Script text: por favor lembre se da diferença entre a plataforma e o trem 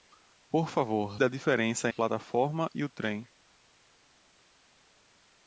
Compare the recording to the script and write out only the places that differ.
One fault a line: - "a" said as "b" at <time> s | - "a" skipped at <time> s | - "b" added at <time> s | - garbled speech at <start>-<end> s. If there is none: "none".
- "lembre se" skipped at 1.2 s
- "entre" skipped at 1.9 s